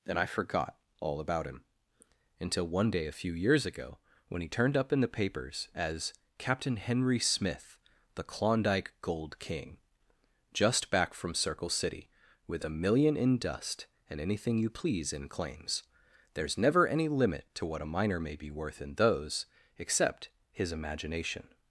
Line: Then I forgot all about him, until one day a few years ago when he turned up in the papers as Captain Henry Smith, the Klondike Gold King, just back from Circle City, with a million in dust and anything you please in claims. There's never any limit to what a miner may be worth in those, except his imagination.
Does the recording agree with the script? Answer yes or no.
no